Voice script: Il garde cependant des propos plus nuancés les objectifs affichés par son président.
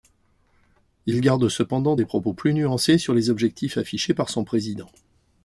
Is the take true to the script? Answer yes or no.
no